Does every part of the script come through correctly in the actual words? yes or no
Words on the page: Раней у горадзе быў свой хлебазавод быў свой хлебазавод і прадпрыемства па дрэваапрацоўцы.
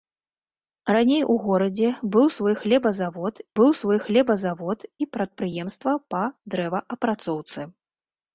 yes